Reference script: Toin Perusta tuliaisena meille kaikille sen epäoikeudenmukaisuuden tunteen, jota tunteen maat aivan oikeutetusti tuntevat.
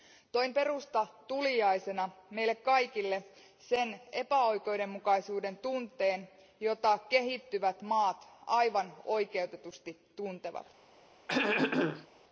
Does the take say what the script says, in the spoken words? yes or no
no